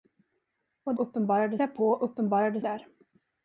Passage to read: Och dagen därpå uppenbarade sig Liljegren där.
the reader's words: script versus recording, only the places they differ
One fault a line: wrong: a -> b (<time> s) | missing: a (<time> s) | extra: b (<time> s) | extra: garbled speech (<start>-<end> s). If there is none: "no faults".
wrong: dagen -> uppenbarade (0.9 s)
missing: sig Liljegren (2.6 s)